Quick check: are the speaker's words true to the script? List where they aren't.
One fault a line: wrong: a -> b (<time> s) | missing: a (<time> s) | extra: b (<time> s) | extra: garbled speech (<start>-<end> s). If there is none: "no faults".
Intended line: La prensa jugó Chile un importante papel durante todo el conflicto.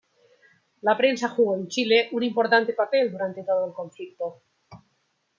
extra: en (1.6 s)